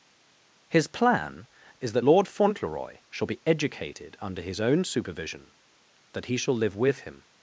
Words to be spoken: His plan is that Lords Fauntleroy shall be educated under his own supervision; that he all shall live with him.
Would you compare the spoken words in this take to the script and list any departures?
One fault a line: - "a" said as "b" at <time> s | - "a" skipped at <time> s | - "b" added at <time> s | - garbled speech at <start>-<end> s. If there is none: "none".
- "Lords" said as "Lord" at 2.0 s
- "all" skipped at 6.4 s